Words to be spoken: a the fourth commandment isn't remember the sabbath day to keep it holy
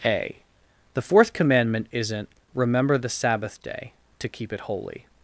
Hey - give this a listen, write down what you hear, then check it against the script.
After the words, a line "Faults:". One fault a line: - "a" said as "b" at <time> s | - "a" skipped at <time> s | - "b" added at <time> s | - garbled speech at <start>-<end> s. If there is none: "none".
a the fourth commandment isn't remember the sabbath day to keep it holy
Faults:
none